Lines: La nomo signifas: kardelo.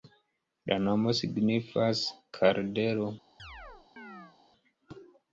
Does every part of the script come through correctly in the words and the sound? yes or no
no